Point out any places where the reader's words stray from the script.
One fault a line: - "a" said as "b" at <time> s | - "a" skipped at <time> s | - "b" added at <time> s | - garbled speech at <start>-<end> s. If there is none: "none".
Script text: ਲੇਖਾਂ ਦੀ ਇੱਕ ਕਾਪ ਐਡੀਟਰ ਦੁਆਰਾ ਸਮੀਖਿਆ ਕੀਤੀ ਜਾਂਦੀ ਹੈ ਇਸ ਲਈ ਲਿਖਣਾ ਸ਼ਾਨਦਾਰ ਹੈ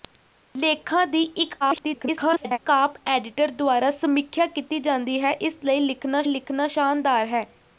- garbled speech at 1.6-2.6 s
- "ਲਿਖਣਾ" added at 6.3 s